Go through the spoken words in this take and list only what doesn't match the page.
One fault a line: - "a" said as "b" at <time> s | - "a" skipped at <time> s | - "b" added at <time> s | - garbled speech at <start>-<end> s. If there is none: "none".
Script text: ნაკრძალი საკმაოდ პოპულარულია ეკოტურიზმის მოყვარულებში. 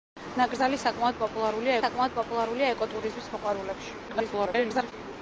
- "საკმაოდ პოპულარულია" added at 1.8 s
- garbled speech at 4.1-4.9 s